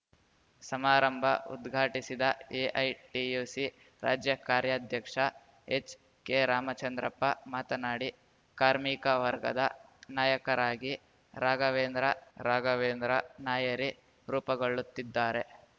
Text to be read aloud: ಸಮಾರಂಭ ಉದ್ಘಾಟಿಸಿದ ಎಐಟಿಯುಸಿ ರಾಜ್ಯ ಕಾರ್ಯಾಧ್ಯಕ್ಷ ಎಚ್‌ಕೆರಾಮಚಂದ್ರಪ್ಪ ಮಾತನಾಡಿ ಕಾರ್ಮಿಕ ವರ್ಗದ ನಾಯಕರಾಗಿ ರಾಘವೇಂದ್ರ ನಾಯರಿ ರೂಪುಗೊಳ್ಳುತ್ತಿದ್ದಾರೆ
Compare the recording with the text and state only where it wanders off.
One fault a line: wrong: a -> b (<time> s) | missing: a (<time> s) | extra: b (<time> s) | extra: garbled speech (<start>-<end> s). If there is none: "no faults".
extra: ರಾಘವೇಂದ್ರ (12.4 s)